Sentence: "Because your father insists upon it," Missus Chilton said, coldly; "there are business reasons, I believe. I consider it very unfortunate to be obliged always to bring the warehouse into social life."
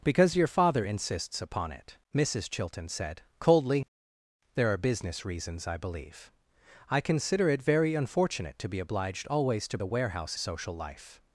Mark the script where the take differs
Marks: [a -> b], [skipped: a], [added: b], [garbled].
"Because your father insists upon it," Missus Chilton said, coldly; "there are business reasons, I believe. I consider it very unfortunate to be obliged always to [skipped: bring] the warehouse [skipped: into] social life."